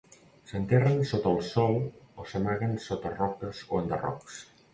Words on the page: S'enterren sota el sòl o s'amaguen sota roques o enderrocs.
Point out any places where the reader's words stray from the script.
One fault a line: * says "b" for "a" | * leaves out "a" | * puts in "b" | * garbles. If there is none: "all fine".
all fine